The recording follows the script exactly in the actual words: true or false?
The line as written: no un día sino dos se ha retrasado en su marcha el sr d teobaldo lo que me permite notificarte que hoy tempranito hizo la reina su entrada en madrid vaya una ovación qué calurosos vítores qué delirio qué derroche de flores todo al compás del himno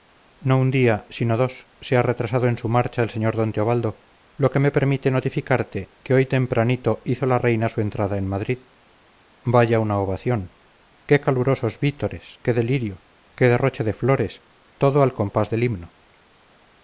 true